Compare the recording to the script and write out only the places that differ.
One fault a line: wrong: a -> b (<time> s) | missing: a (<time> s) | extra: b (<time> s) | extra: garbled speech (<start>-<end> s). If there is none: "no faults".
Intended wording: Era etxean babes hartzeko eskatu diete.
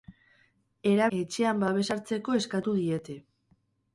no faults